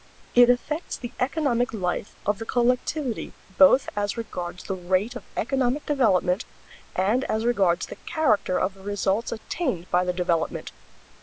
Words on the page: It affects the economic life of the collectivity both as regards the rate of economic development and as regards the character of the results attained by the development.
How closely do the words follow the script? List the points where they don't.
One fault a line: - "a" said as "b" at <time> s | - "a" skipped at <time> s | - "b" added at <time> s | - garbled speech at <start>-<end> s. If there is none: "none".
none